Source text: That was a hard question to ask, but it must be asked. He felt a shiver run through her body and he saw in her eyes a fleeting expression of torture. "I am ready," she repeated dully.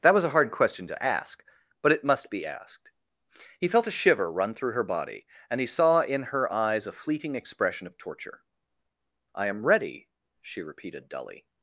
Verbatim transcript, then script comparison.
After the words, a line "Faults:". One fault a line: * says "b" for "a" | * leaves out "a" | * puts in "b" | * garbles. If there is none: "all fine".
That was a hard question to ask, but it must be asked. He felt a shiver run through her body and he saw in her eyes a fleeting expression of torture. "I am ready," she repeated dully.
Faults:
all fine